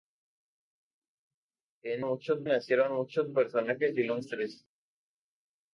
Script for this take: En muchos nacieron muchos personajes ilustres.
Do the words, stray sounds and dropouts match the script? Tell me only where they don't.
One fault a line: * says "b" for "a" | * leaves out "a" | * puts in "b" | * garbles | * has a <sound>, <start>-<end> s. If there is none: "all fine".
all fine